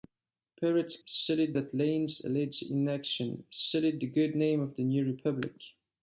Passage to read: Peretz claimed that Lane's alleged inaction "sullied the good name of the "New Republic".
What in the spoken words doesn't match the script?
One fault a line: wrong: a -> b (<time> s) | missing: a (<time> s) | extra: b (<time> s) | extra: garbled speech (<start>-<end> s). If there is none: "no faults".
wrong: claimed -> sullied (1.0 s)